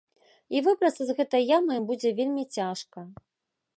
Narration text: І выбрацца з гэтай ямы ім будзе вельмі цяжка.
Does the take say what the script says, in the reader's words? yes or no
yes